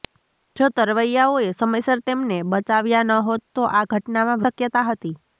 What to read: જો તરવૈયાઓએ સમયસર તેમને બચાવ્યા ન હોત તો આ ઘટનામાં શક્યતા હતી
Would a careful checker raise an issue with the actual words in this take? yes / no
no